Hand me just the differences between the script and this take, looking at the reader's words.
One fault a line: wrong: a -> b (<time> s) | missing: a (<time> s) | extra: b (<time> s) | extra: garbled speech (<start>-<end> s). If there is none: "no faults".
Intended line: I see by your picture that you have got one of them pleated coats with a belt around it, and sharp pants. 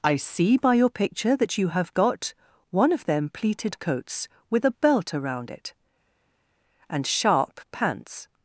no faults